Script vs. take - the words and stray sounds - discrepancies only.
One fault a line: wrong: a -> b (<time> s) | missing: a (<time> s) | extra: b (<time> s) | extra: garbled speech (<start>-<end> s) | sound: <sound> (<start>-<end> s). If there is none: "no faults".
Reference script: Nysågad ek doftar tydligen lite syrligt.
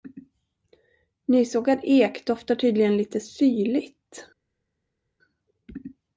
no faults